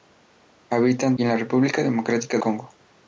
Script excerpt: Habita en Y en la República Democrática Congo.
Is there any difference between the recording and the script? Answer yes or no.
no